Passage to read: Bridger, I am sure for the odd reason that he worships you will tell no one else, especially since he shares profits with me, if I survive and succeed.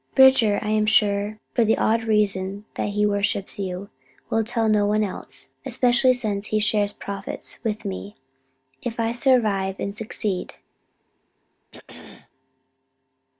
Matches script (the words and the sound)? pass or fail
fail